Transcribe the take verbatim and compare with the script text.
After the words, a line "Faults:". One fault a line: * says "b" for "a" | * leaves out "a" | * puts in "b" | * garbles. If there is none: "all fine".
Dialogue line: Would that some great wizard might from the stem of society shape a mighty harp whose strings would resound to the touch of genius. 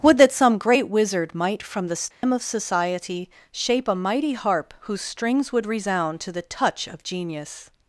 Would that some great wizard might from the stem of society shape a mighty harp whose strings would resound to the touch of genius.
Faults:
all fine